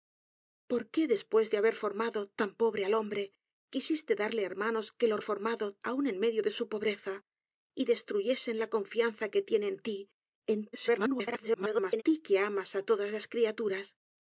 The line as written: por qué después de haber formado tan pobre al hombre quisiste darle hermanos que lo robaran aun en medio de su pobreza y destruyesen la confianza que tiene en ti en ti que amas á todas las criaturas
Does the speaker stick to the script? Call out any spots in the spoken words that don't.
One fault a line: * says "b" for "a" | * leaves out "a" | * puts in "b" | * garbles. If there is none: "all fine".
* says "formado" for "robaran"
* garbles